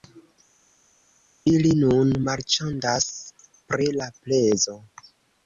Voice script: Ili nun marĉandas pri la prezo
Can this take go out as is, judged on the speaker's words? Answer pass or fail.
pass